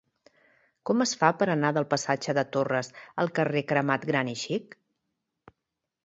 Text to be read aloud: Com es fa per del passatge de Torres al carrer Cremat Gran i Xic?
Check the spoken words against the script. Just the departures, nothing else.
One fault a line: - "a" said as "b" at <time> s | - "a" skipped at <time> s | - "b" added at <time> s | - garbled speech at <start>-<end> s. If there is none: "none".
- "anar" added at 1.6 s